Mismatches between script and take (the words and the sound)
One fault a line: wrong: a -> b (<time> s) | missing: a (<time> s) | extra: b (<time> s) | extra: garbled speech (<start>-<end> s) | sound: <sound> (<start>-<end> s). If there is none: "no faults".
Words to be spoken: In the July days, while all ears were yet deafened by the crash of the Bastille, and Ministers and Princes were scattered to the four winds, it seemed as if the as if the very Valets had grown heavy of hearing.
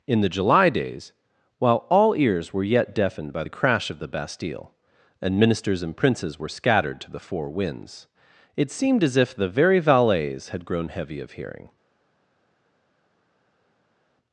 missing: as if the (9.5 s)